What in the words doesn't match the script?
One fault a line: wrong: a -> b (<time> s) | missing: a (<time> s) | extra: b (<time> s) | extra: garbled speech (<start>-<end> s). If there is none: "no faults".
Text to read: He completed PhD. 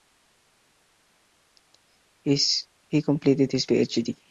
extra: his (3.5 s)